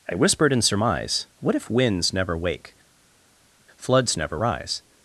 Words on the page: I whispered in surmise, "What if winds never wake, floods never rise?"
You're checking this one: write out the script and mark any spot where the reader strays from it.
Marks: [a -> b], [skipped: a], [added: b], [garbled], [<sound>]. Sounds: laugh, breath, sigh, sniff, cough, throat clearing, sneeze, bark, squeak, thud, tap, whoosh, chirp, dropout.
I whispered in surmise, "What if winds never wake, floods never rise?"